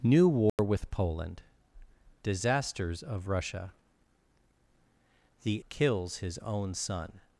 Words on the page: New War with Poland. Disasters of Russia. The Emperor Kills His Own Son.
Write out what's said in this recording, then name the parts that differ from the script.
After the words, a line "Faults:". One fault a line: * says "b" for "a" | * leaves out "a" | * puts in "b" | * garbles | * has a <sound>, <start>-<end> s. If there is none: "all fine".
New War with Poland. Disasters of Russia. The Kills His Own Son.
Faults:
* has a dropout, 0.5-0.6 s
* leaves out "Emperor"